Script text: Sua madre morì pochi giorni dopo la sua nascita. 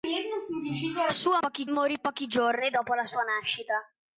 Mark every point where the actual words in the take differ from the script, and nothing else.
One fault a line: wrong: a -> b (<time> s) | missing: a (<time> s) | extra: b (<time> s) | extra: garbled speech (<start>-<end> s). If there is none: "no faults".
wrong: madre -> pochi (1.4 s)